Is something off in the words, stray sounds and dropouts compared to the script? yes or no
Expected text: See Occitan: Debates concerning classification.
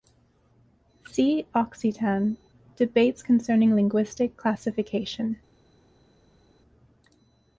yes